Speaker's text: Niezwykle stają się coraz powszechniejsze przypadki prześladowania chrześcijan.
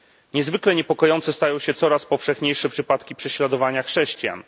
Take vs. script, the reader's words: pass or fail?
fail